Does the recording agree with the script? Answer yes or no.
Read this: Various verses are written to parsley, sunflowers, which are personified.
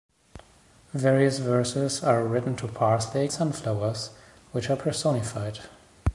yes